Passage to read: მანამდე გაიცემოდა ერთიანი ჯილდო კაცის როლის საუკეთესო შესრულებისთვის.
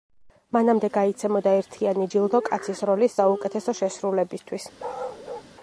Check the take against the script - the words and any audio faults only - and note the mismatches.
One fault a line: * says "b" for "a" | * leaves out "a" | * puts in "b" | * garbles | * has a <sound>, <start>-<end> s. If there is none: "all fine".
* has a bark, 4.8-5.5 s